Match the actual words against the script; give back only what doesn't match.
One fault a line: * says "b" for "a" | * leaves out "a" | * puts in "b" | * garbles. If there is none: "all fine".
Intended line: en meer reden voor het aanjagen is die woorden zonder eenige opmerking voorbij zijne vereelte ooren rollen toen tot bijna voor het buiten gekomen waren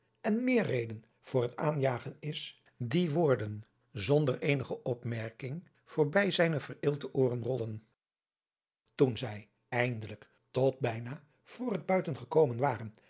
* puts in "zij eindelijk"